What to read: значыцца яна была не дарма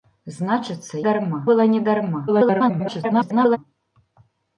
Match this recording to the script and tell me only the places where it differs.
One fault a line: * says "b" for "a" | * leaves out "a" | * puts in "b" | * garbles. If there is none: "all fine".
* says "дарма" for "яна"
* garbles